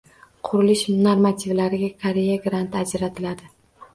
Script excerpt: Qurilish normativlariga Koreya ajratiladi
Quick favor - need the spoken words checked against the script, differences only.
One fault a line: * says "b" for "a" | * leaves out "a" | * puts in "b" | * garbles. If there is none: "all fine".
* puts in "granti"